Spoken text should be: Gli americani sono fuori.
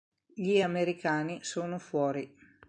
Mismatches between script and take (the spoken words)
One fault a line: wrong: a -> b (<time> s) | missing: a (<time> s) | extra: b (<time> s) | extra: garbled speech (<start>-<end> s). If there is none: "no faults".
no faults